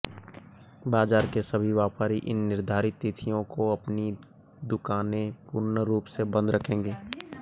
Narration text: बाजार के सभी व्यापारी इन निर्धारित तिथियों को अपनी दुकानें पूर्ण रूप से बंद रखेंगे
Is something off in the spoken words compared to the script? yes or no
no